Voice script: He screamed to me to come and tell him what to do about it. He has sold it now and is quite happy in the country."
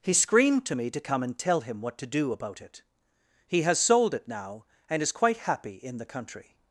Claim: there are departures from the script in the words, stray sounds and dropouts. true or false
false